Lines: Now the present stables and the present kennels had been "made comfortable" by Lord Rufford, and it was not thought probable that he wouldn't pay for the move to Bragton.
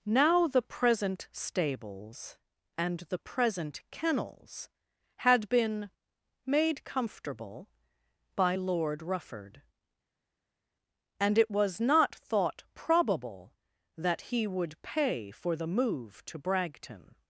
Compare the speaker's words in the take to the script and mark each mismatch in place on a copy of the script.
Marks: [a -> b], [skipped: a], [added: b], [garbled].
Now the present stables and the present kennels had been "made comfortable" by Lord Rufford, and it was not thought probable that he [wouldn't -> would] pay for the move to Bragton.